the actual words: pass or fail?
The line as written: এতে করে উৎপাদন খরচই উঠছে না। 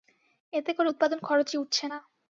pass